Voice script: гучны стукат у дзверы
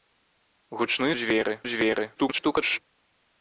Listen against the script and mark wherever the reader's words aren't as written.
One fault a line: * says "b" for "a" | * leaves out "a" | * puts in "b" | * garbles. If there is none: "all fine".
* says "дзверы" for "стукат"
* garbles